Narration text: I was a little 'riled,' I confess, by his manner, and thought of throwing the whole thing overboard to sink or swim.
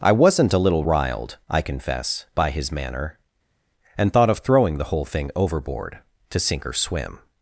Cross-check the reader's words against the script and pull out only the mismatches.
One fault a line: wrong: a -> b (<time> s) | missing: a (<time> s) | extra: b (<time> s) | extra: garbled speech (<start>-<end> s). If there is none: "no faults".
wrong: was -> wasn't (0.1 s)